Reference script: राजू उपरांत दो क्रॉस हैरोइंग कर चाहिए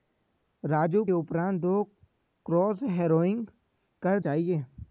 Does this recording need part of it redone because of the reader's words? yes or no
no